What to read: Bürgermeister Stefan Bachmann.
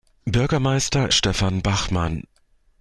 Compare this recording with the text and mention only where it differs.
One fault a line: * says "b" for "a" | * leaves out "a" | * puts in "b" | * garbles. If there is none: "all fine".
all fine